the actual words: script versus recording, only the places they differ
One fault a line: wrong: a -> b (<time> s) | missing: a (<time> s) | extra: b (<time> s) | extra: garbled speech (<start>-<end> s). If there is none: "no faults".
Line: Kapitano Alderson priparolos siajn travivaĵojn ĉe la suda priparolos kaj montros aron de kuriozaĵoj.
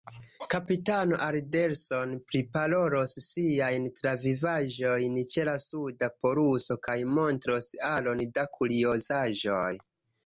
wrong: priparolos -> poluso (6.2 s)
wrong: de -> da (8.4 s)